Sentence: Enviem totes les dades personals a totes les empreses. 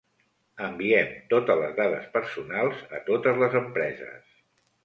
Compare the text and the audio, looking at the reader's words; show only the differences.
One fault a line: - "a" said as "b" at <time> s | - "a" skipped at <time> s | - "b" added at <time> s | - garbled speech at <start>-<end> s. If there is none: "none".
none